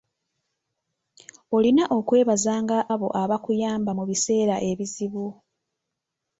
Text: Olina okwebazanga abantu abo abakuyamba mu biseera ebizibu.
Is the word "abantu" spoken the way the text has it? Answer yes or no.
no